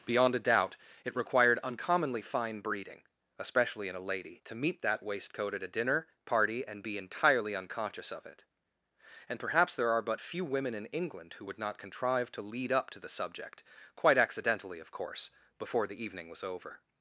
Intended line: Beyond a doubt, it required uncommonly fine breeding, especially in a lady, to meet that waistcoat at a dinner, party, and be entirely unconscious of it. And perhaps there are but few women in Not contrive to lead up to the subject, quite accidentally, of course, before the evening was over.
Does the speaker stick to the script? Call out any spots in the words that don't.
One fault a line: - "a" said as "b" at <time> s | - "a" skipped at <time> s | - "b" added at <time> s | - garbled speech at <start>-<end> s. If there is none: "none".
- "England who would" added at 10.9 s